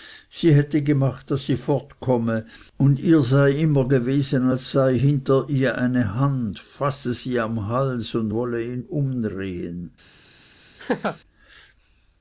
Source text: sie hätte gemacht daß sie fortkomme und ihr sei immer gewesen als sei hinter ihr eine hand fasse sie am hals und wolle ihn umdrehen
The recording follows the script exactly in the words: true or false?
true